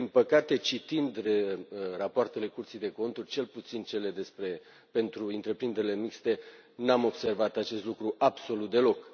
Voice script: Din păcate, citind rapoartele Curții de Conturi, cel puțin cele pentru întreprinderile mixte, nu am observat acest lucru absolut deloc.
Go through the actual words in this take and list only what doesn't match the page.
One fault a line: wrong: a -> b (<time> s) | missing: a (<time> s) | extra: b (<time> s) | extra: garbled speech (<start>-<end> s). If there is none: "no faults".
no faults